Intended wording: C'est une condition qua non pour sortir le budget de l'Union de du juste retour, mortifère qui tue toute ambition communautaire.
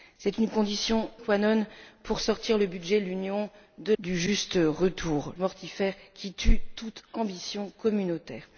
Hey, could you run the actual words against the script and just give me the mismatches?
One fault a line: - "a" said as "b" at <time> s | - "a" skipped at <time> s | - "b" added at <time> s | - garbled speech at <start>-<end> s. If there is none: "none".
none